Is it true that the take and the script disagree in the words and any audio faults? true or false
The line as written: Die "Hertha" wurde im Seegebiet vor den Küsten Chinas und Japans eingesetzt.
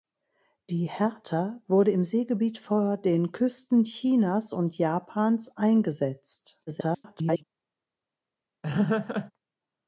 true